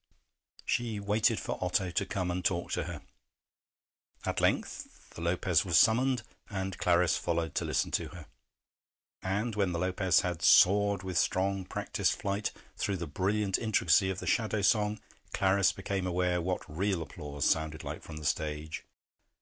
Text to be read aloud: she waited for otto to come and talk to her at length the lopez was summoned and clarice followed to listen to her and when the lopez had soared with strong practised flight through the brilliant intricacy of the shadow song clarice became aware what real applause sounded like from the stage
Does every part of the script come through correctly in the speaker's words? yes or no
yes